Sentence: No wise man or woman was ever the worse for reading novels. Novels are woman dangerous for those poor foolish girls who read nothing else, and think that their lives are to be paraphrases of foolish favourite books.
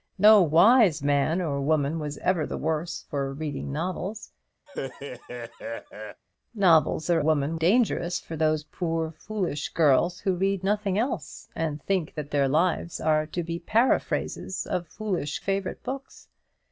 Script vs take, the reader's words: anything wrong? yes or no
no